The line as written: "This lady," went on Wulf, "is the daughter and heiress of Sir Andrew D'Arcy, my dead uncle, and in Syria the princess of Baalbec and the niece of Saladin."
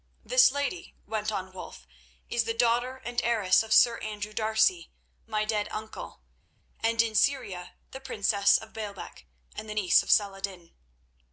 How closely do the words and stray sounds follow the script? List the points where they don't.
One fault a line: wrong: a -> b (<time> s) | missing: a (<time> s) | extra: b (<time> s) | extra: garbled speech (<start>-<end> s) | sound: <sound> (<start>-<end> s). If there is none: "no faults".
no faults